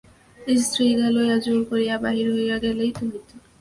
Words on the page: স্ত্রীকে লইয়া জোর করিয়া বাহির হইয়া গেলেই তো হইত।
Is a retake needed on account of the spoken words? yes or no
no